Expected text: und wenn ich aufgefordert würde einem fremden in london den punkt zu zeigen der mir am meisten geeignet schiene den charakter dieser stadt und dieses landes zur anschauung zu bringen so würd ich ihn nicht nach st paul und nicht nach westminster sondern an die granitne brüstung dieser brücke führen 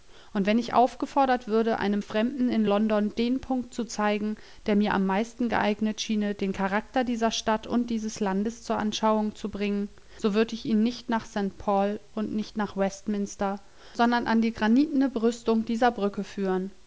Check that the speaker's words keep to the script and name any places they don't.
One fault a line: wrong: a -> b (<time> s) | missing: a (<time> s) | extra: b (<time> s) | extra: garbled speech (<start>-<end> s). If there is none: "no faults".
no faults